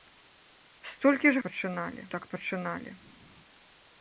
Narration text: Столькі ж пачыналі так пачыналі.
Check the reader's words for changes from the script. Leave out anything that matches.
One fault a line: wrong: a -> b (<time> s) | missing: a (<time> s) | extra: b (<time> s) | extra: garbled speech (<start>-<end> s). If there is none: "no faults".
no faults